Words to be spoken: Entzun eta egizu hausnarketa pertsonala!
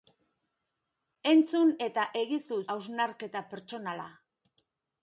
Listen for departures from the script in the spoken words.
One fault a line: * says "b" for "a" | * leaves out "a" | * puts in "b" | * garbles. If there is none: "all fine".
all fine